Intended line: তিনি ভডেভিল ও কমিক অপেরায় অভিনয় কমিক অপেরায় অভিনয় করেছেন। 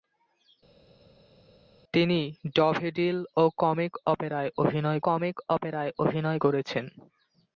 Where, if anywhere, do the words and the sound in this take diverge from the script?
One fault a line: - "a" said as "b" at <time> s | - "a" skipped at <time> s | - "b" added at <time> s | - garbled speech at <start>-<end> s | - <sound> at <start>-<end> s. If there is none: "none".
none